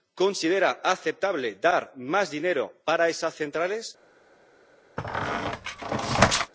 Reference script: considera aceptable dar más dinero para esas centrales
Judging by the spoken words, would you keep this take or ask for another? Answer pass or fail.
pass